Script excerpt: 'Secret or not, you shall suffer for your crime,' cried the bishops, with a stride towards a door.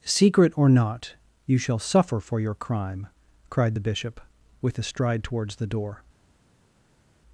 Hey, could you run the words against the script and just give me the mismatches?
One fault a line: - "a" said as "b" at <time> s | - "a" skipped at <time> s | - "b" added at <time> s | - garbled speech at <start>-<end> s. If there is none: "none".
- "bishops" said as "bishop" at 3.8 s
- "a" said as "the" at 5.5 s